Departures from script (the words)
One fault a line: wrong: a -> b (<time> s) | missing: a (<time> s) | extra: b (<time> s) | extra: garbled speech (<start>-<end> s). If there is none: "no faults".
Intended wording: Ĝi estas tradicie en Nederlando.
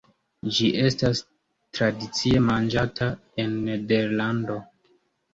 extra: manĝata (2.4 s)